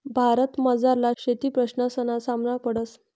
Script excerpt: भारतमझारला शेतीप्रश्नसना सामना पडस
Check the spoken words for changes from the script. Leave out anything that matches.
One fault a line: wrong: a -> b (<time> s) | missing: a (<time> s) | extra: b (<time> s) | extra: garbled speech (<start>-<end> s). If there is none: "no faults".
no faults